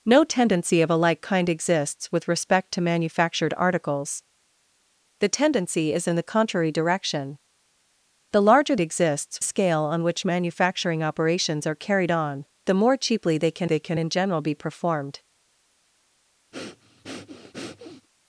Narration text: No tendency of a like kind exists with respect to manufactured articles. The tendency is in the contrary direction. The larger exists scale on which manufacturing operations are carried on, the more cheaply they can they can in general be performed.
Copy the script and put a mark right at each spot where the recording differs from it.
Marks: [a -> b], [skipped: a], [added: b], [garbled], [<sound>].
No tendency of a like kind exists with respect to manufactured articles. The tendency is in the contrary direction. The larger exists scale on which manufacturing operations are carried on, the more cheaply they can they can in general be performed. [breath]